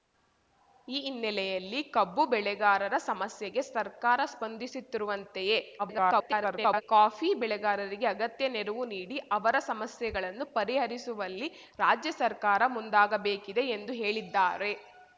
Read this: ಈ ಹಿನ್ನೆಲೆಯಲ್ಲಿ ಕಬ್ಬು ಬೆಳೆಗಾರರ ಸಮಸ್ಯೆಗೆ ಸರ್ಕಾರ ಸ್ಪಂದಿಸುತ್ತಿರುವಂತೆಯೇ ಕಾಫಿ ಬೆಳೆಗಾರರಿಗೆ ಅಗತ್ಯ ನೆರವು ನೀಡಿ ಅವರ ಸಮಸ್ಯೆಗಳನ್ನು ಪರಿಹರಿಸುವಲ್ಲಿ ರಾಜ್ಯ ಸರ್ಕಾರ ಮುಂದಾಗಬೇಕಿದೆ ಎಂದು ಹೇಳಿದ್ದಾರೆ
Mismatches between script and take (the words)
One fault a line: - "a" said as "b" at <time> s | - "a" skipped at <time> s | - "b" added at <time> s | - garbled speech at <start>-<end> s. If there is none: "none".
- garbled speech at 5.8-6.8 s